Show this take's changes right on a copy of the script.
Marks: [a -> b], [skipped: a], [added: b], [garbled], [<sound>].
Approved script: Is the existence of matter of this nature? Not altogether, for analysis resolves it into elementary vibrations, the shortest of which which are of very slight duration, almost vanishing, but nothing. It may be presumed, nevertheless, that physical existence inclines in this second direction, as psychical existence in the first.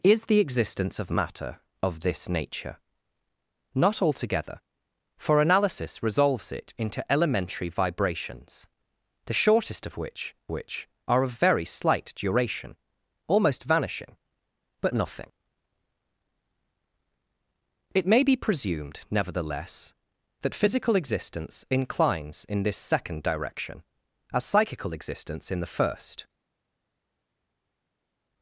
Is the existence of matter of this nature? Not altogether, for analysis resolves it into elementary vibrations, the shortest of which which are of very slight duration, almost vanishing, but nothing. It may be presumed, nevertheless, that physical existence inclines in this second direction, as psychical existence in the first.